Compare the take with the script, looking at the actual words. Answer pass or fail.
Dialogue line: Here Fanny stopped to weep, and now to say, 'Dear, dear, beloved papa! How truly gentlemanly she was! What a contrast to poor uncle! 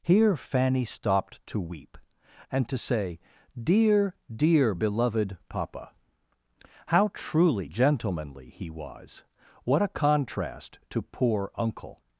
fail